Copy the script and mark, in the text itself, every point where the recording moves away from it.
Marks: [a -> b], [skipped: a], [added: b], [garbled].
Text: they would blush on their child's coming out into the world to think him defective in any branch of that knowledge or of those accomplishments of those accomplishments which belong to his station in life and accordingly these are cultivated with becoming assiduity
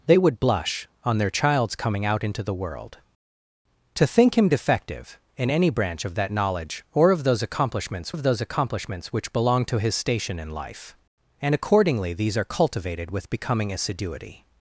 they would blush on their child's coming out into the world to think him defective in any branch of that knowledge or of those accomplishments of those accomplishments which belong to his station in life and accordingly these are cultivated with becoming assiduity